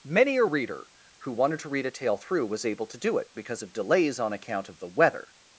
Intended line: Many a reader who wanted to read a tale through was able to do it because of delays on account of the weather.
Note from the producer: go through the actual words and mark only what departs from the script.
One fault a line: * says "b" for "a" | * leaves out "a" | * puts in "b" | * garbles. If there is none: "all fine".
all fine